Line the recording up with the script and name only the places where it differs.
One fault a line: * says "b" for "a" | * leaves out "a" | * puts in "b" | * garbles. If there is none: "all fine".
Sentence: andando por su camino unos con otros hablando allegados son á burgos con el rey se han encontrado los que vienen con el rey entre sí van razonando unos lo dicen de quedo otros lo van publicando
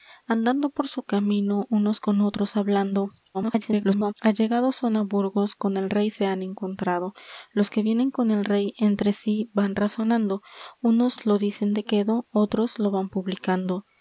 * garbles